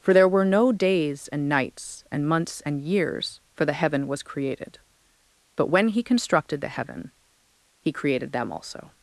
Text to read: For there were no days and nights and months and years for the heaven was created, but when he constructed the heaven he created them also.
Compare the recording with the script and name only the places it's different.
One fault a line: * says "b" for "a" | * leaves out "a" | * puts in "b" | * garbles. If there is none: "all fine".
all fine